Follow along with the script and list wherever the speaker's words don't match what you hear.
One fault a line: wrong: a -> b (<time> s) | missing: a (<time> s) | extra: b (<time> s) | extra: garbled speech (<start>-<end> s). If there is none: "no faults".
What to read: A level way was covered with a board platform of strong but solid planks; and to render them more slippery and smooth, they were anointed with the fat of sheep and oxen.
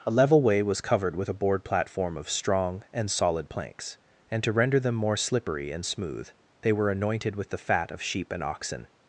wrong: but -> and (2.9 s)